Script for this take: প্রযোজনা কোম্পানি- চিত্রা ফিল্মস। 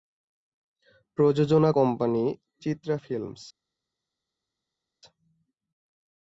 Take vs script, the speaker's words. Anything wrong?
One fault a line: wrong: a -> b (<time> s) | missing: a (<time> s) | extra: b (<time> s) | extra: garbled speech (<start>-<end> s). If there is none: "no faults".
no faults